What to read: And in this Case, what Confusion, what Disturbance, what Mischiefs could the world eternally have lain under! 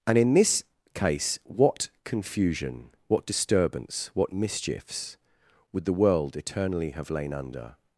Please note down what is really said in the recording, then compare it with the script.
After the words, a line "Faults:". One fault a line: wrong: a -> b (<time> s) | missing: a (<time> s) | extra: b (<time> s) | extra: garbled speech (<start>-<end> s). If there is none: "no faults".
And in this Case, what Confusion, what Disturbance, what Mischiefs would the world eternally have lain under!
Faults:
wrong: could -> would (5.7 s)